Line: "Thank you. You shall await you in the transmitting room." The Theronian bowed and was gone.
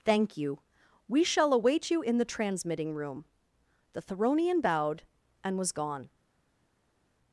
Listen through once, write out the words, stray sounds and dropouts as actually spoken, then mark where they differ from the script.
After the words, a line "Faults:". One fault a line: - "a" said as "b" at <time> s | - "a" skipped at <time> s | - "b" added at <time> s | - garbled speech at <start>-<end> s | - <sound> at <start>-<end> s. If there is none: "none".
"Thank you. We shall await you in the transmitting room." The Theronian bowed and was gone.
Faults:
- "You" said as "We" at 1.1 s